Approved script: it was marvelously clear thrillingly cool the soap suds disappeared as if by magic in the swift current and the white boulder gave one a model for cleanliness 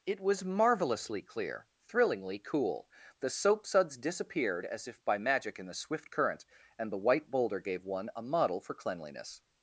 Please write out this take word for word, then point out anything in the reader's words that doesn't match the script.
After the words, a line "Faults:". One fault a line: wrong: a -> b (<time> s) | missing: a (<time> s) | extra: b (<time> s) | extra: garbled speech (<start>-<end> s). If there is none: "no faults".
it was marvelously clear thrillingly cool the soap suds disappeared as if by magic in the swift current and the white boulder gave one a model for cleanliness
Faults:
no faults